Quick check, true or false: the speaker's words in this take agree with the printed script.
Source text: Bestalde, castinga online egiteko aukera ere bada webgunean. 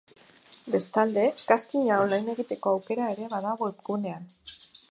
true